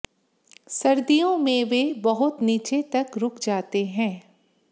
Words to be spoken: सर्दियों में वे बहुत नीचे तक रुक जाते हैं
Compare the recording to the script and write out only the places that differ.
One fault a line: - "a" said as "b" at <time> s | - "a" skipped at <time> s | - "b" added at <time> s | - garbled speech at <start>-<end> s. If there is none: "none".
none